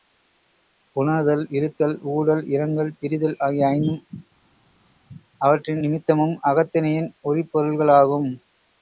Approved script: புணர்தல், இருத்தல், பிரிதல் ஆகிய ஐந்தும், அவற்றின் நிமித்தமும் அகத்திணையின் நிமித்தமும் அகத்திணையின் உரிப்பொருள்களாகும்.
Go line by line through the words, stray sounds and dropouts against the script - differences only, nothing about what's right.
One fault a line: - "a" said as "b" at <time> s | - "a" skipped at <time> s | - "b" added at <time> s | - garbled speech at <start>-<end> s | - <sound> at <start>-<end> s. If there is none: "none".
- "ஊடல் இரங்கல்" added at 2.1 s
- "நிமித்தமும் அகத்திணையின்" skipped at 7.1 s